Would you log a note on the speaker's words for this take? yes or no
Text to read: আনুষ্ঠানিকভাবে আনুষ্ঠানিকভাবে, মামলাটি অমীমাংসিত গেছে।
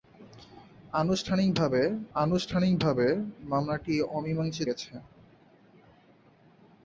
no